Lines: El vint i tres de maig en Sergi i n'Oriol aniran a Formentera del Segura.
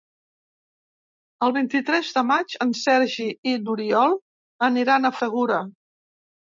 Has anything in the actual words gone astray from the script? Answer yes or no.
yes